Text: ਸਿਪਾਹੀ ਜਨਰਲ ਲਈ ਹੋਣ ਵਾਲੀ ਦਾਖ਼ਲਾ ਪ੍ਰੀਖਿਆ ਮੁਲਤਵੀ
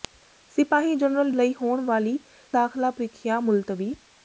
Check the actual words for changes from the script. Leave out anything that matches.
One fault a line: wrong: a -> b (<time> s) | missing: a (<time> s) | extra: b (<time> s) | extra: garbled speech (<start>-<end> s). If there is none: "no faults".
no faults